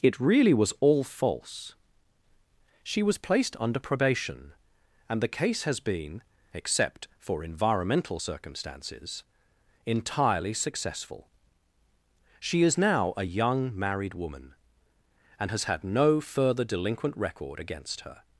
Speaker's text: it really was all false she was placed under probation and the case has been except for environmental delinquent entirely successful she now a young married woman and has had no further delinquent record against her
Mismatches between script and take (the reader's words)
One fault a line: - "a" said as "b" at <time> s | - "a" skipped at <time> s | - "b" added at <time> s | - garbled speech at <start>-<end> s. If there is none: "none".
- "delinquent" said as "circumstances" at 8.1 s
- "is" added at 12.6 s